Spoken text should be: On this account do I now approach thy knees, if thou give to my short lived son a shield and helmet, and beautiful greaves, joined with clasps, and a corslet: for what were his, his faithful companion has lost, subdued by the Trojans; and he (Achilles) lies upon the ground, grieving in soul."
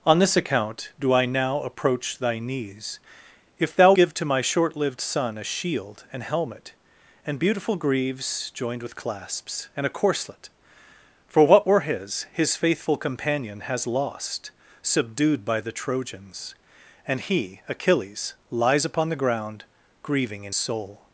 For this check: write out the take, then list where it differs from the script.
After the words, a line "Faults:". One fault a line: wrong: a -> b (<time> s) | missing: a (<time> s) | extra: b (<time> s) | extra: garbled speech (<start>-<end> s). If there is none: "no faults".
On this account do I now approach thy knees, if thou give to my short lived son a shield and helmet, and beautiful greaves, joined with clasps, and a corslet: for what were his, his faithful companion has lost, subdued by the Trojans; and he (Achilles) lies upon the ground, grieving in soul."
Faults:
no faults